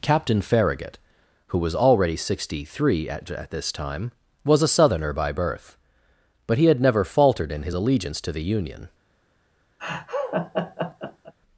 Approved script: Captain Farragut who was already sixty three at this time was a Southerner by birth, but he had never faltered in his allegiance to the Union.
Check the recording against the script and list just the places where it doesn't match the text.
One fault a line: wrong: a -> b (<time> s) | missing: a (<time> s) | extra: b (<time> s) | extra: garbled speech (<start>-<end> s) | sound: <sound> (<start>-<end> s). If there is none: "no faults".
extra: at (3.3 s)
sound: laugh (9.8-11.3 s)